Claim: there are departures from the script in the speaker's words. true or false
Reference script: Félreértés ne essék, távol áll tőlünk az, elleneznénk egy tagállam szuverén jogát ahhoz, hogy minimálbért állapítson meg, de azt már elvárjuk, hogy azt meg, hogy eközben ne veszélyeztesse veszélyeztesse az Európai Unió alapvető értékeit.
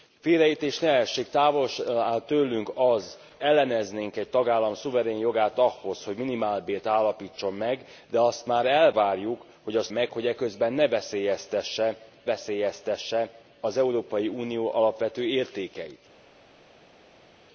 false